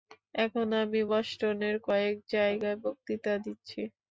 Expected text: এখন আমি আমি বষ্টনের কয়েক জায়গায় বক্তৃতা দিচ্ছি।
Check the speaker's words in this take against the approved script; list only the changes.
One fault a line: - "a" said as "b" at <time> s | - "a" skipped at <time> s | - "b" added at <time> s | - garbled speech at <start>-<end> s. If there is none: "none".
- "আমি" skipped at 1.0 s